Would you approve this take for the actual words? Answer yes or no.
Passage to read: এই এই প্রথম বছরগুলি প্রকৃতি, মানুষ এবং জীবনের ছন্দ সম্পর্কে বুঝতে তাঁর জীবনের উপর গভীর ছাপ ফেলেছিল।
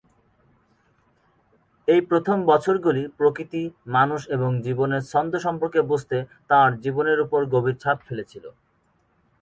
no